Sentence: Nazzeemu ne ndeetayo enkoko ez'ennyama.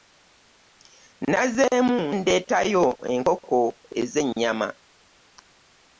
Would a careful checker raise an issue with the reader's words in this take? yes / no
yes